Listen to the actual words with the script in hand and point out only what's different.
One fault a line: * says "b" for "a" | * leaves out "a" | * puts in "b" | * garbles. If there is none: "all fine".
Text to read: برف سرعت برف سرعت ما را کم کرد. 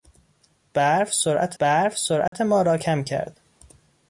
all fine